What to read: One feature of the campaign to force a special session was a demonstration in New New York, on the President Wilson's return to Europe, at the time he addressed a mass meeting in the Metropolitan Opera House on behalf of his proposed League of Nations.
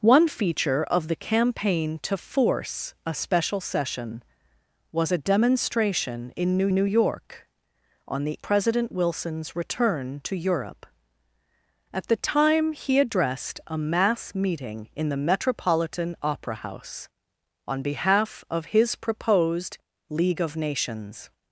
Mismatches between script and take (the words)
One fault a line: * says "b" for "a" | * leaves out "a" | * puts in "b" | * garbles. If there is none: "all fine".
all fine